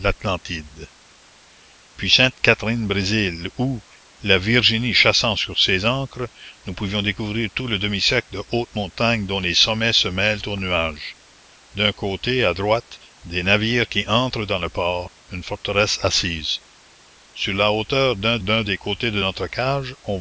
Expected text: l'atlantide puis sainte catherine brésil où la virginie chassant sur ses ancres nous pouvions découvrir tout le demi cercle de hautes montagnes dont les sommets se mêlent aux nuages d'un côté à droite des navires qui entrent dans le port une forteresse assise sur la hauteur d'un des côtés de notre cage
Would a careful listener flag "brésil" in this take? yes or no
no